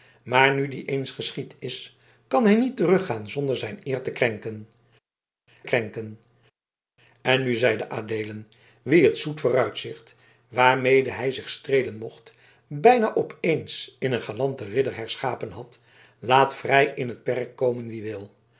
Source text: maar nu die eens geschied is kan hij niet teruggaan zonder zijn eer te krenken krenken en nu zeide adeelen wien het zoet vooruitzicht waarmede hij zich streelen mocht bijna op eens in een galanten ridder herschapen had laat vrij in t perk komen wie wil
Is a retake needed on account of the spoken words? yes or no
no